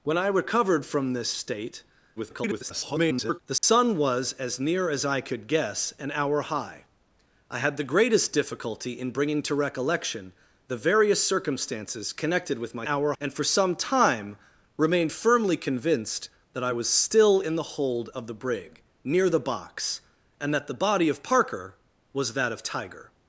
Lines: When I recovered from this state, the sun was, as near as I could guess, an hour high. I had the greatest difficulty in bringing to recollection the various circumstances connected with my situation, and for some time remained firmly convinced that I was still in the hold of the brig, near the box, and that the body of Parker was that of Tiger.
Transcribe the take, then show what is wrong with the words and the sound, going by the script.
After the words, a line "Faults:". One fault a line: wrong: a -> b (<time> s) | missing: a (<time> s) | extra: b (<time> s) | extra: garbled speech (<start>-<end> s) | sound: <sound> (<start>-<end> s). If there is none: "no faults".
When I recovered from this state, [garbled] the sun was, as near as I could guess, an hour high. I had the greatest difficulty in bringing to recollection the various circumstances connected with my hour, and for some time remained firmly convinced that I was still in the hold of the brig, near the box, and that the body of Parker was that of Tiger.
Faults:
extra: garbled speech (2.2-3.4 s)
sound: dropout (3.6-3.6 s)
wrong: situation -> hour (12.8 s)